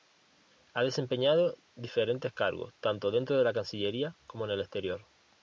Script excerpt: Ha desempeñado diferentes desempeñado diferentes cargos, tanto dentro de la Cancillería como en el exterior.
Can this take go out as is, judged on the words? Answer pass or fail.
fail